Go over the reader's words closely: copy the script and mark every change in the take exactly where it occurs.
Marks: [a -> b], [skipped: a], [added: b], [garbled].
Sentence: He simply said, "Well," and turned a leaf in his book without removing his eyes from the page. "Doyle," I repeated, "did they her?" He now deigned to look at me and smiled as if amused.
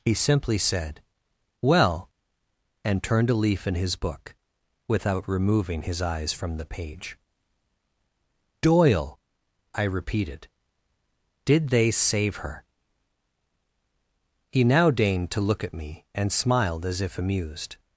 He simply said, "Well," and turned a leaf in his book without removing his eyes from the page. "Doyle," I repeated, "did they [added: save] her?" He now deigned to look at me and smiled as if amused.